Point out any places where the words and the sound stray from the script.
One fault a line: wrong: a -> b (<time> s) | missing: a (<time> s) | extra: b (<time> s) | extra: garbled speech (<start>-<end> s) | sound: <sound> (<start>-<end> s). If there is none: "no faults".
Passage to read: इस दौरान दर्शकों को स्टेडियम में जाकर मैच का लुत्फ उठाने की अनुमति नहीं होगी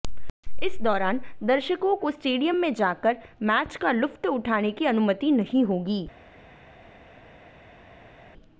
no faults